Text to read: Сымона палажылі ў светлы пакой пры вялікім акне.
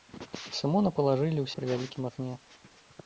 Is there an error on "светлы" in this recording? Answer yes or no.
yes